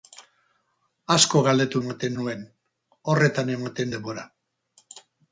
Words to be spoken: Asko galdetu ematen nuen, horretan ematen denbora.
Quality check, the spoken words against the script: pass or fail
pass